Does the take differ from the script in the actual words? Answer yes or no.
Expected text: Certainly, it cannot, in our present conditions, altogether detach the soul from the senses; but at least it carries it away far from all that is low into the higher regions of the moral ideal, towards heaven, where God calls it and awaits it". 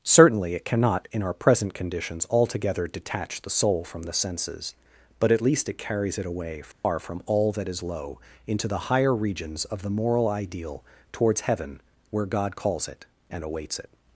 no